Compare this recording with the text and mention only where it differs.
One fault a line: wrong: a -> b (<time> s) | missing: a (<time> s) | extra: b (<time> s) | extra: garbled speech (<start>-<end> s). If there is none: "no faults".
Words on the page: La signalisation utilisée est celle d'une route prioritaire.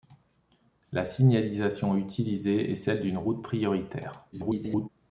extra: garbled speech (4.3-4.9 s)